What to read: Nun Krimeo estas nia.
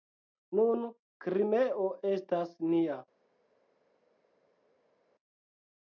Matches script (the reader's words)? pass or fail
pass